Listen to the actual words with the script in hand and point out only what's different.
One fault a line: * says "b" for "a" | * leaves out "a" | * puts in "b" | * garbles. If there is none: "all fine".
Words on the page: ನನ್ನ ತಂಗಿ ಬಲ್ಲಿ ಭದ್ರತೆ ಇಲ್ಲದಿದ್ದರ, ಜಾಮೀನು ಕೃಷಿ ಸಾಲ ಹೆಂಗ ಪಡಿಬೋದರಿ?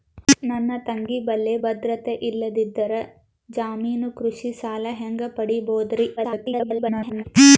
* garbles